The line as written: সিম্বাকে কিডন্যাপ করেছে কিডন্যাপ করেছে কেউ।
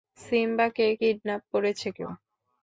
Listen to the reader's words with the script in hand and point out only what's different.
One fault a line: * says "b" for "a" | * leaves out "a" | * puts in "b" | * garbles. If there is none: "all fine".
* leaves out "কিডন্যাপ করেছে"